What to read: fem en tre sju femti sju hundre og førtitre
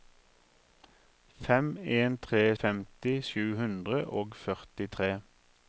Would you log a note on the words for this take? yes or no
yes